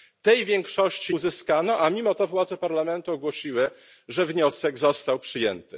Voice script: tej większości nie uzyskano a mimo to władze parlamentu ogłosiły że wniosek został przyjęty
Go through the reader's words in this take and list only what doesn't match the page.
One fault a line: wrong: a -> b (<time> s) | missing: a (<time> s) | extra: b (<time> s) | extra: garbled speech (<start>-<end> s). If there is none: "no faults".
missing: nie (1.1 s)